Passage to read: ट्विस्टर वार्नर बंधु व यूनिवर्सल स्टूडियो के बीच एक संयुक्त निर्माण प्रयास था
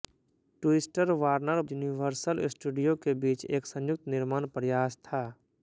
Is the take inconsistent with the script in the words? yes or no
yes